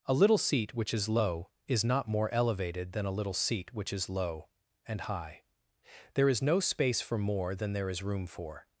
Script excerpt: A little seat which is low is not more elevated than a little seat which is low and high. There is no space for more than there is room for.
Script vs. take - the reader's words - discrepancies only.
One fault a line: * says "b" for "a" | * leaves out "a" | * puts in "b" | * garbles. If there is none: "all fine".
all fine